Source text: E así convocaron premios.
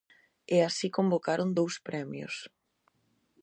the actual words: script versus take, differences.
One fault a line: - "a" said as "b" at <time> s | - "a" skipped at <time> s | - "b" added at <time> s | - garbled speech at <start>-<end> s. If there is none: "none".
- "dous" added at 1.6 s